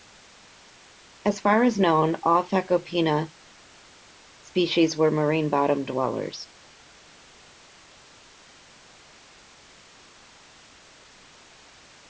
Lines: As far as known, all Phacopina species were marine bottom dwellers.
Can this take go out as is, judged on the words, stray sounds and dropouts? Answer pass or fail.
pass